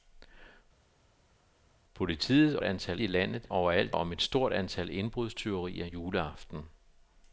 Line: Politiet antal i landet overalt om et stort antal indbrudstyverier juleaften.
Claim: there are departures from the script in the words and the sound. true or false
false